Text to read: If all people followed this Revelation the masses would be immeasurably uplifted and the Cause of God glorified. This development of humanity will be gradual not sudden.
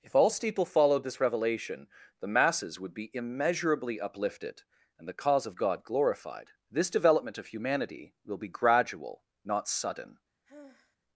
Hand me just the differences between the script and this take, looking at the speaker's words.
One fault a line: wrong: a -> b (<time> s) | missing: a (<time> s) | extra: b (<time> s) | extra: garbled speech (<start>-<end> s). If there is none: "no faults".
wrong: people -> steeple (0.3 s)